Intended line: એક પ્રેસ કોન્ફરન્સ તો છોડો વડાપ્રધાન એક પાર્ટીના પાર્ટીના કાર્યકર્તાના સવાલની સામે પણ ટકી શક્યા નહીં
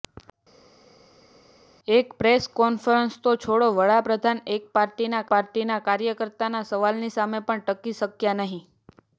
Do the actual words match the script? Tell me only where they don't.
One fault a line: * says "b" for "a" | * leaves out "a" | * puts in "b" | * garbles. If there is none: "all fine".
all fine